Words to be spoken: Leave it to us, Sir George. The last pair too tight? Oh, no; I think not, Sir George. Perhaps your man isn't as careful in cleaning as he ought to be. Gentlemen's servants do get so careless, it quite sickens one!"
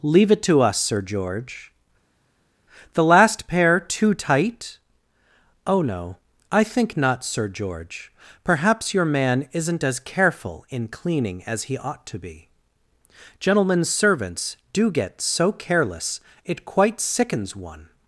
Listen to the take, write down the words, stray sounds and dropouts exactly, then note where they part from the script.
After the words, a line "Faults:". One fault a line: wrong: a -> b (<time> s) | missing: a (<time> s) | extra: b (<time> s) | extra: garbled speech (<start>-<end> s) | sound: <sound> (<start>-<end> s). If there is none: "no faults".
Leave it to us, Sir George. The last pair too tight? Oh, no; I think not, Sir George. Perhaps your man isn't as careful in cleaning as he ought to be. Gentlemen's servants do get so careless, it quite sickens one!"
Faults:
no faults